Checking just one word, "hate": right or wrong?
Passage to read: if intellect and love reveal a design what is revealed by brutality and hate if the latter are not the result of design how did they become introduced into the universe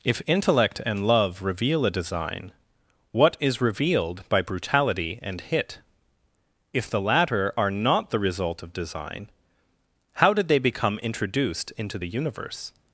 wrong